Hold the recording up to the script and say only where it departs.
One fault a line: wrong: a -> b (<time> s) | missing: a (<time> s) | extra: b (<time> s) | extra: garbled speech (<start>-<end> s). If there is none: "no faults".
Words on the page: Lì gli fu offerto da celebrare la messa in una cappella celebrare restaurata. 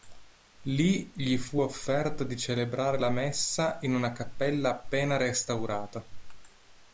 wrong: da -> di (2.2 s)
wrong: celebrare -> appena (4.7 s)